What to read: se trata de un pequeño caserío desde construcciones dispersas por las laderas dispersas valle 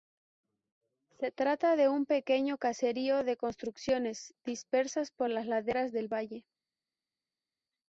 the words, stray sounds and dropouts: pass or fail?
fail